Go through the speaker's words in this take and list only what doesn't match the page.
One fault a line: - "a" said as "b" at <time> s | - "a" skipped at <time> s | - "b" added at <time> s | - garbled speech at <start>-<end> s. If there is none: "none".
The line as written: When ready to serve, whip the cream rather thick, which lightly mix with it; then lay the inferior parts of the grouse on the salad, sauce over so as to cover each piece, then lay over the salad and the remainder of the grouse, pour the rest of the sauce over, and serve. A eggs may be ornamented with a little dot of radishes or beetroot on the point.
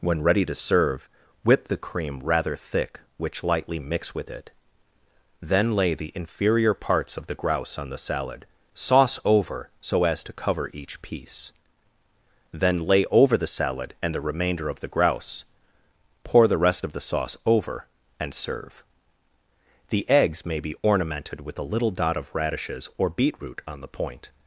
- "A" said as "The" at 19.9 s